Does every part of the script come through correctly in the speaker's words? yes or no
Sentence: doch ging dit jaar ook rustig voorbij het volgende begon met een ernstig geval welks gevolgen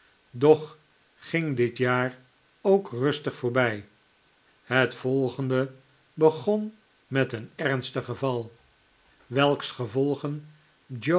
yes